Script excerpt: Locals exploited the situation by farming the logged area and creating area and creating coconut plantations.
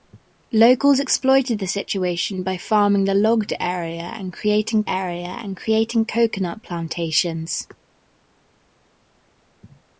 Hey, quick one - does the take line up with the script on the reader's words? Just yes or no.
yes